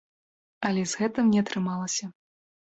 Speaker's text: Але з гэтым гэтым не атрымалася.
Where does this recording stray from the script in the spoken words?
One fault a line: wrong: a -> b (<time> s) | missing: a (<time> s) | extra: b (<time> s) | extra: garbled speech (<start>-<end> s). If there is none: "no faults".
missing: гэтым (1.3 s)